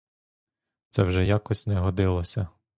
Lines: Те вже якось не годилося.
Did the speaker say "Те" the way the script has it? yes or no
no